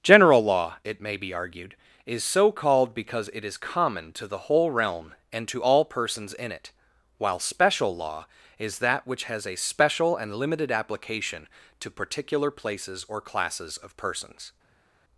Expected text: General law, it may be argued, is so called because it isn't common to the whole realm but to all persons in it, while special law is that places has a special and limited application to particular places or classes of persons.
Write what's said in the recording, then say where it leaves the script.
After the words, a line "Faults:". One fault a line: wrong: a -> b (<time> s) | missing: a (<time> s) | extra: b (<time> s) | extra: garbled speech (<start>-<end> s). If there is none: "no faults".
General law, it may be argued, is so called because it is common to the whole realm and to all persons in it, while special law is that which has a special and limited application to particular places or classes of persons.
Faults:
wrong: isn't -> is (3.4 s)
wrong: but -> and (5.3 s)
wrong: places -> which (9.0 s)